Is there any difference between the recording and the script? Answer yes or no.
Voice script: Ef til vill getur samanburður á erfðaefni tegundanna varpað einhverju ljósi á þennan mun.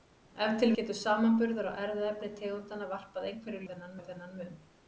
yes